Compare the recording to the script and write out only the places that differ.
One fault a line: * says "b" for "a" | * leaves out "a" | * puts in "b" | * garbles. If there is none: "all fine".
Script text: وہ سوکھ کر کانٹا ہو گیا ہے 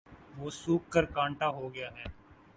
all fine